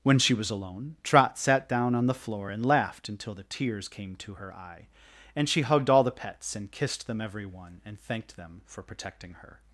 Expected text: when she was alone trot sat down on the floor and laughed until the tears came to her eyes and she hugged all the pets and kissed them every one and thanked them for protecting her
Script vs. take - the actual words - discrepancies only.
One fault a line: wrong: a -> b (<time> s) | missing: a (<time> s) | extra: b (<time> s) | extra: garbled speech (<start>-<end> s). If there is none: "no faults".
wrong: eyes -> eye (4.5 s)